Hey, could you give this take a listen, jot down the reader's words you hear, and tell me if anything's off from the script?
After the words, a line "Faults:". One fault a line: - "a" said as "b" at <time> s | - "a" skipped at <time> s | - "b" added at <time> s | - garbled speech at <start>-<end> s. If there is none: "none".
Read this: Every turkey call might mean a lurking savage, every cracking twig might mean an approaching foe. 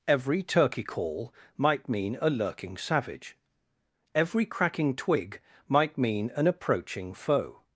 Every turkey call might mean a lurking savage, every cracking twig might mean an approaching foe.
Faults:
none